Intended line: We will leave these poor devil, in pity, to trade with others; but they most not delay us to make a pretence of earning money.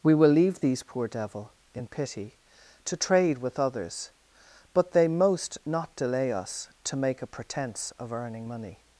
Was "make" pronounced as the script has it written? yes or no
yes